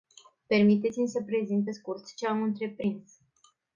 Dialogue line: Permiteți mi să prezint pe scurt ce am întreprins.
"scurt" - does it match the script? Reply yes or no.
yes